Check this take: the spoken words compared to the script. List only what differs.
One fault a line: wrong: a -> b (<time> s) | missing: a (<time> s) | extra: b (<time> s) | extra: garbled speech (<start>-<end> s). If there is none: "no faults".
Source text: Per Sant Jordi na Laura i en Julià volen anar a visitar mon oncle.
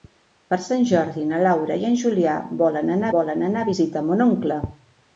extra: volen anar (3.2 s)